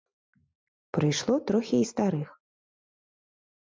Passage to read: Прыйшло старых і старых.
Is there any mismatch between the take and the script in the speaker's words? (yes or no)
yes